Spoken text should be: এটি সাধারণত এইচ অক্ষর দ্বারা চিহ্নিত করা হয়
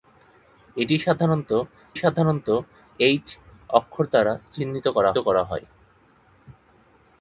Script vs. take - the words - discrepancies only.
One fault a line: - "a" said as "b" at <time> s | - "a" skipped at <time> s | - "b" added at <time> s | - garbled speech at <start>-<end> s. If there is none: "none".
- "সাধারণত" added at 1.9 s
- "করা" added at 5.2 s